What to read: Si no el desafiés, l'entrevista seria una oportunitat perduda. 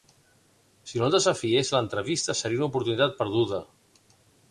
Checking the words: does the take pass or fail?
pass